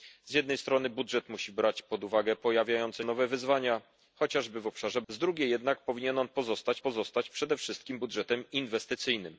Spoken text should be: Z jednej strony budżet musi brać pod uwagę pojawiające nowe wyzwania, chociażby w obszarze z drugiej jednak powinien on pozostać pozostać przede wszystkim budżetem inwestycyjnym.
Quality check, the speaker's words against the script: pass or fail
pass